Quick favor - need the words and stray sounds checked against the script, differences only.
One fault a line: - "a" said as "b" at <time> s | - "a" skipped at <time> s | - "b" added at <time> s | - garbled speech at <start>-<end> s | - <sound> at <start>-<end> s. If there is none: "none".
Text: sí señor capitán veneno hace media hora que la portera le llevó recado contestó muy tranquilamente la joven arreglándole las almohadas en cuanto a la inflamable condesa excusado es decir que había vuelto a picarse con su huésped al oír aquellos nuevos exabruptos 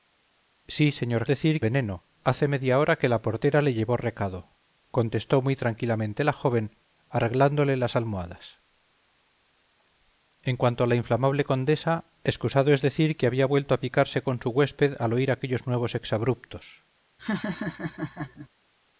- "capitán" said as "decir" at 1.3 s
- laugh at 17.2-18.5 s